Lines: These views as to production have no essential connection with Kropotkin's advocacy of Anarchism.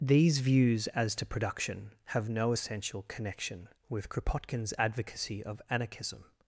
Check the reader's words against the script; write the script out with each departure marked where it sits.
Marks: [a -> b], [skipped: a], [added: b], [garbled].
These views as to production have no essential connection with Kropotkin's advocacy of Anarchism.